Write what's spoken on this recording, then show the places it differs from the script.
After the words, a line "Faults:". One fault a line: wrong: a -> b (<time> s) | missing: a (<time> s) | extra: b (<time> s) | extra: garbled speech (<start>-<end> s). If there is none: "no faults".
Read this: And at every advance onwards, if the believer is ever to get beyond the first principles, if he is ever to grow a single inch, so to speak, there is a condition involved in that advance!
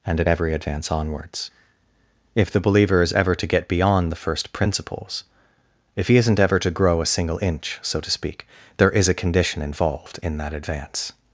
And at every advance onwards, if the believer is ever to get beyond the first principles, if he isn't ever to grow a single inch, so to speak, there is a condition involved in that advance!
Faults:
wrong: is -> isn't (6.2 s)